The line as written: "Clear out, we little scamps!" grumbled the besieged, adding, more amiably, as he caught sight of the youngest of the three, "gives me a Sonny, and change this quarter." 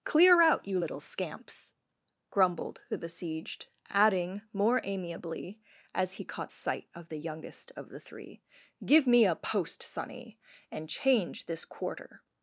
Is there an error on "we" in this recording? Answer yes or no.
yes